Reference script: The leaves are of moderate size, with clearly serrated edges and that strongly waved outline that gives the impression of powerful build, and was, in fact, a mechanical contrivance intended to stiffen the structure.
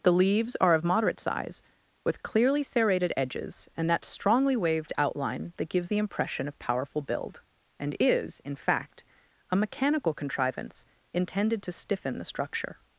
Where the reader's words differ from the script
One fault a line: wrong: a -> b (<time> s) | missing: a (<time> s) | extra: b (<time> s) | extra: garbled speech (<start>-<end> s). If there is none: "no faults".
wrong: was -> is (8.0 s)